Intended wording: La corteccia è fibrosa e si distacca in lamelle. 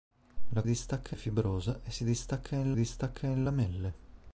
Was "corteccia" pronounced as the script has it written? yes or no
no